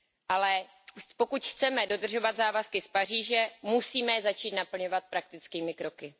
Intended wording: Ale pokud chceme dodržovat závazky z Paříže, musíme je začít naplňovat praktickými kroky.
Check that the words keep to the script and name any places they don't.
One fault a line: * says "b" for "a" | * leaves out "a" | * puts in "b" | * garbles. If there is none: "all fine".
all fine